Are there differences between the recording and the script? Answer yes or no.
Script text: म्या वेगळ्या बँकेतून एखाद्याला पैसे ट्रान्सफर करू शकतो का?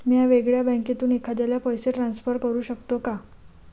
no